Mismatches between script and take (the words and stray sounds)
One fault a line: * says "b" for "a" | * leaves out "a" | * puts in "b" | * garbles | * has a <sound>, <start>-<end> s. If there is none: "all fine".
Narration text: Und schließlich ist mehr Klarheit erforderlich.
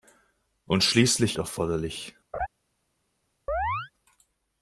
* leaves out "ist mehr Klarheit"
* has a laugh, 2.3-2.5 s
* has a chirp, 3.5-3.9 s